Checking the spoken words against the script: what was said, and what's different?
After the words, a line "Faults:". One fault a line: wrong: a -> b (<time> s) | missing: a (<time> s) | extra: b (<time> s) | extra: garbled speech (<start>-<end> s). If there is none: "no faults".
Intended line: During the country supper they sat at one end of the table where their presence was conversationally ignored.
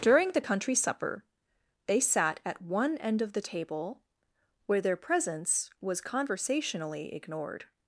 During the country supper they sat at one end of the table where their presence was conversationally ignored.
Faults:
no faults